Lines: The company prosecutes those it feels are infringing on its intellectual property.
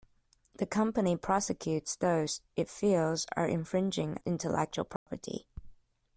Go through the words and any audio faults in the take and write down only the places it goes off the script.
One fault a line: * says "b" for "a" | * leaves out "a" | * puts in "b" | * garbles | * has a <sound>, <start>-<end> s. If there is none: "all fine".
* leaves out "on its"
* has a dropout, 5.0-5.1 s